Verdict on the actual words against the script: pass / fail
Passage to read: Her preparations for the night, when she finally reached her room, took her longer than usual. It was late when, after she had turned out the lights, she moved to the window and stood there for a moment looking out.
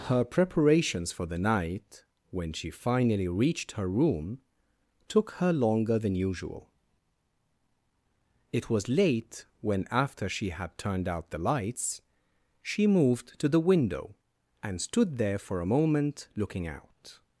pass